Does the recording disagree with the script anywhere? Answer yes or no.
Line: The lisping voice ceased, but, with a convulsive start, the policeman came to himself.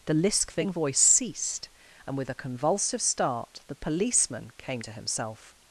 yes